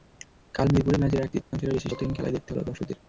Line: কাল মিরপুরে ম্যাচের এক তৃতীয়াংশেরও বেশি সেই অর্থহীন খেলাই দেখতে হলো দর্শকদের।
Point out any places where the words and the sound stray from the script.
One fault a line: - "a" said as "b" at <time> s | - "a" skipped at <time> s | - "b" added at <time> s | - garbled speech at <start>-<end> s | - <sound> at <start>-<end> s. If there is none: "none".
- dropout at 1.4-1.5 s
- "সেই" skipped at 1.9 s